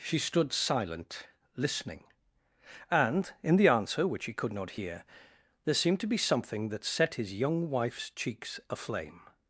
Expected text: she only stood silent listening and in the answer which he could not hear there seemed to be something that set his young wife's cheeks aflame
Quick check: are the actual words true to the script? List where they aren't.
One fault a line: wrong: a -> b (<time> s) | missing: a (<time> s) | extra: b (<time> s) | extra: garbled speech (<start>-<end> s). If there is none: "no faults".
missing: only (0.2 s)